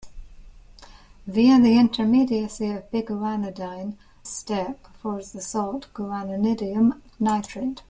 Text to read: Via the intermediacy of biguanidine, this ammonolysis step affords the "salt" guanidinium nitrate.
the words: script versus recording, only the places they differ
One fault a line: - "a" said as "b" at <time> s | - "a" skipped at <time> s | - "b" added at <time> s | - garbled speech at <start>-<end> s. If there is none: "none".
- "this ammonolysis" skipped at 4.0 s